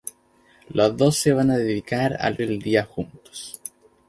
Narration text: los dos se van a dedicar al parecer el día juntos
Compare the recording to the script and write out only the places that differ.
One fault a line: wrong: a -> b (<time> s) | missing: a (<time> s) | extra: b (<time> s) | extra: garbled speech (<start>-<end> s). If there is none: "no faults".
missing: parecer (2.4 s)